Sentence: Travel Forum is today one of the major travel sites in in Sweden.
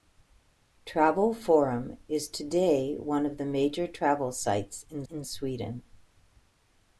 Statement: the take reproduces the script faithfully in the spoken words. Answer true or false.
true